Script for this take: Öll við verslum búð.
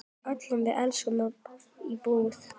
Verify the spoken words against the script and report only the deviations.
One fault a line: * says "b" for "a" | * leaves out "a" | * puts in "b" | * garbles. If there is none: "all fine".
* puts in "í"